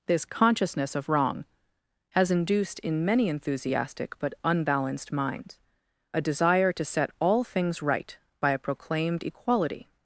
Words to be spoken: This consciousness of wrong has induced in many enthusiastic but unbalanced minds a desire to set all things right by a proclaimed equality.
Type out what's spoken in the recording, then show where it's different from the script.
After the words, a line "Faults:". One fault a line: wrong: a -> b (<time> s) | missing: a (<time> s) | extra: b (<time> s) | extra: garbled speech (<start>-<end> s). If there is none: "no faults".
This consciousness of wrong has induced in many enthusiastic but unbalanced minds a desire to set all things right by a proclaimed equality.
Faults:
no faults